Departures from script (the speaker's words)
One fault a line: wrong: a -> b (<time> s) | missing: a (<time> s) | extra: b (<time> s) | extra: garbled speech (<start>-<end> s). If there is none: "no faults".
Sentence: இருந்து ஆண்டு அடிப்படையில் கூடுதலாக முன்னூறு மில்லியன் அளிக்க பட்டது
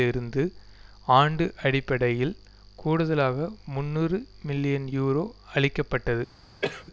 extra: யூரோ (4.9 s)